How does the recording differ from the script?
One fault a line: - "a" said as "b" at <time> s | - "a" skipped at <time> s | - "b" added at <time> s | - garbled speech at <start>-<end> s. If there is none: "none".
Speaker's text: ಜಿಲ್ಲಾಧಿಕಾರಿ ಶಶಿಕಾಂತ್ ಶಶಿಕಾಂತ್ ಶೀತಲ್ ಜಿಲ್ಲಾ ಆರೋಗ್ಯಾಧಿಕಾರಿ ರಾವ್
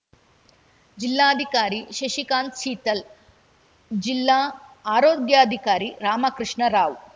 - "ಶಶಿಕಾಂತ್" skipped at 2.6 s
- "ರಾಮಕೃಷ್ಣ" added at 6.0 s